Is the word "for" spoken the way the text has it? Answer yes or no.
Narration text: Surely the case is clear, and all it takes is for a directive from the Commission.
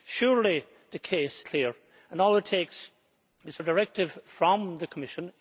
no